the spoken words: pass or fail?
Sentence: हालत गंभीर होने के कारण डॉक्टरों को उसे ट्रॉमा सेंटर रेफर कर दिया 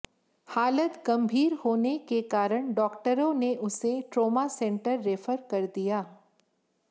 fail